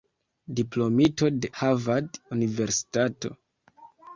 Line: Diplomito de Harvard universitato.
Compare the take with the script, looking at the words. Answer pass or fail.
pass